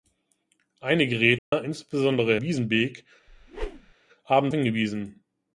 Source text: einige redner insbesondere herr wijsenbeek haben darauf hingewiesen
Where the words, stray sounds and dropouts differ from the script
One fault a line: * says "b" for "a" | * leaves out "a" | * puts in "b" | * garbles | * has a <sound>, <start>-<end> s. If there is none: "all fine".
* has a dropout, 1.4-1.5 s
* leaves out "herr"
* has a whoosh, 3.3-3.9 s
* leaves out "darauf"